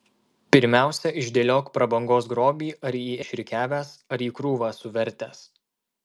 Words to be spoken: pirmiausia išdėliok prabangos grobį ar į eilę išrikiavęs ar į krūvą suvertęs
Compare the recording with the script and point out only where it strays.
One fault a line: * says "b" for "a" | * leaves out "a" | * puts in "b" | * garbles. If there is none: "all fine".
* leaves out "eilę"